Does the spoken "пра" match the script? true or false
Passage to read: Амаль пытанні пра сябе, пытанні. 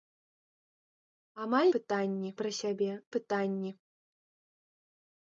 true